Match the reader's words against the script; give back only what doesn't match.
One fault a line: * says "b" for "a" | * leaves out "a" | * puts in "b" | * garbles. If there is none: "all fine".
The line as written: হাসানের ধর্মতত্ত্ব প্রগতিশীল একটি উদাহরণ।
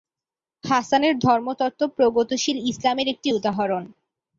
* puts in "ইসলামের"